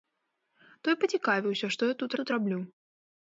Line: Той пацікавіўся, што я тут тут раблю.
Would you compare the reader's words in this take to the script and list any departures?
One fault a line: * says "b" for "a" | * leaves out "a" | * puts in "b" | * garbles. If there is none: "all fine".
all fine